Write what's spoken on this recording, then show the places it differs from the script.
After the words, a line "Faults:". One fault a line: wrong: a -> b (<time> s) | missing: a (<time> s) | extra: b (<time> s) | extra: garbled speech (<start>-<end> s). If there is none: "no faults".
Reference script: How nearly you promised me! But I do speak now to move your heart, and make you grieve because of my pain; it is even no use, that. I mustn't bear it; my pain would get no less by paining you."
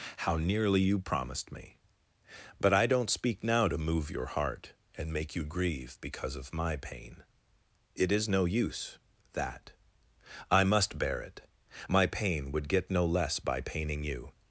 How nearly you promised me! But I don't speak now to move your heart, and make you grieve because of my pain; it is no use, that. I must bear it; my pain would get no less by paining you."
Faults:
wrong: do -> don't (2.9 s)
missing: even (8.3 s)
wrong: mustn't -> must (10.6 s)